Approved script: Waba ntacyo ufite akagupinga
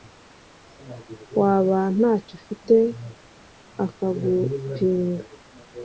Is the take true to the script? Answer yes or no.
yes